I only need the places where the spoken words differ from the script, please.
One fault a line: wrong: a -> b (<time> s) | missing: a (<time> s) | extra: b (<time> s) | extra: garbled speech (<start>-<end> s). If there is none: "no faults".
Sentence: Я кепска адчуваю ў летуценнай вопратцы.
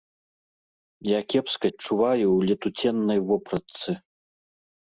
no faults